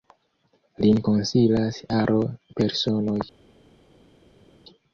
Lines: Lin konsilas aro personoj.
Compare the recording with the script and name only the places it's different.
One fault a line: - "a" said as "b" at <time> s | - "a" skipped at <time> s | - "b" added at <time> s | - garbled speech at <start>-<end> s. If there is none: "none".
none